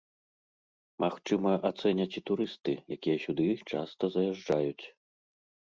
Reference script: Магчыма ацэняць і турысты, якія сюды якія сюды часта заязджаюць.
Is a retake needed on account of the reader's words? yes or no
yes